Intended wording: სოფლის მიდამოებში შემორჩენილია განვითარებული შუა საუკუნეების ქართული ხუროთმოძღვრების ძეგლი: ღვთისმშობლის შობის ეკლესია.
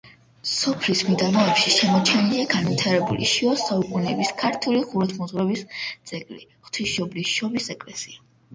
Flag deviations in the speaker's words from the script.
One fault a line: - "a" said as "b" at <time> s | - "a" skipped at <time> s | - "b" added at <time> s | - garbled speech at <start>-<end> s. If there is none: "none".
none